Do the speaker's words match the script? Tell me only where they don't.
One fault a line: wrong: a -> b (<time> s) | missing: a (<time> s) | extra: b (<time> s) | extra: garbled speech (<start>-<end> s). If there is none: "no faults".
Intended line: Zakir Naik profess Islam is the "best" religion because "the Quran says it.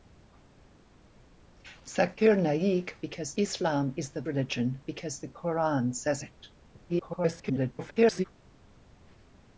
wrong: profess -> because (3.0 s)
missing: best (4.2 s)
extra: garbled speech (6.9-8.2 s)